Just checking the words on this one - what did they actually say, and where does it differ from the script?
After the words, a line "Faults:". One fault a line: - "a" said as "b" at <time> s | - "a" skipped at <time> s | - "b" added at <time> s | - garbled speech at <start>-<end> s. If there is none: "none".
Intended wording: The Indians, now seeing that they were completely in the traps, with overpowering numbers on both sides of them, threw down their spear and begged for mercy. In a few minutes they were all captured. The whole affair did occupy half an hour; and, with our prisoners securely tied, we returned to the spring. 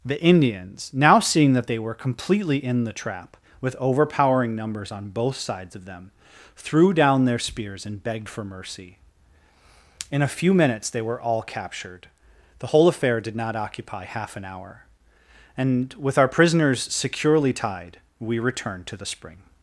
The Indians, now seeing that they were completely in the trap, with overpowering numbers on both sides of them, threw down their spears and begged for mercy. In a few minutes they were all captured. The whole affair did not occupy half an hour; and, with our prisoners securely tied, we returned to the spring.
Faults:
- "traps" said as "trap" at 2.9 s
- "spear" said as "spears" at 7.4 s
- "not" added at 13.3 s